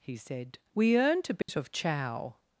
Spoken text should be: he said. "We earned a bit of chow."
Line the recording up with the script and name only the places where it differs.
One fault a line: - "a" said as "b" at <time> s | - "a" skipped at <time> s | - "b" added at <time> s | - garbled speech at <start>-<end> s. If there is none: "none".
none